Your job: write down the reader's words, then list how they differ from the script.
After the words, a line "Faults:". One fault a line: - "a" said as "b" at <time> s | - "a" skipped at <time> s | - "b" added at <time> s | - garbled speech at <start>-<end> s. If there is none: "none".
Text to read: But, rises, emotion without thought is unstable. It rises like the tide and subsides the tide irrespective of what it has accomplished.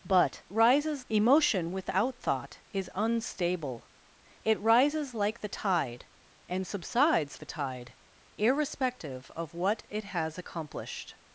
But, rises, emotion without thought is unstable. It rises like the tide and subsides the tide irrespective of what it has accomplished.
Faults:
none